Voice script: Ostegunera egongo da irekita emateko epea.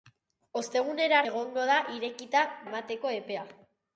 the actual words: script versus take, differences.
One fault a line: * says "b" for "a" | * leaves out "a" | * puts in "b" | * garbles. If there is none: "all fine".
all fine